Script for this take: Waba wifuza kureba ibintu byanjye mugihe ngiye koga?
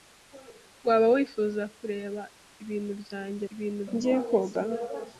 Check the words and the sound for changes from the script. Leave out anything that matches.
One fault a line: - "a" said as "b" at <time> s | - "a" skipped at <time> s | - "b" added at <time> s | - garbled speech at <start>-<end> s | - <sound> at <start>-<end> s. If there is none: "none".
- "mugihe" said as "ibintu" at 3.5 s